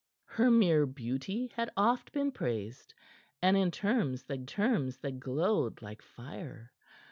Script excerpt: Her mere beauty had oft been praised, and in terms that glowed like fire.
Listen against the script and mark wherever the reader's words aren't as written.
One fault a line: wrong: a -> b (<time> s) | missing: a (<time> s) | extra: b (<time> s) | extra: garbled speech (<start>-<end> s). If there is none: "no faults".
extra: terms that (4.4 s)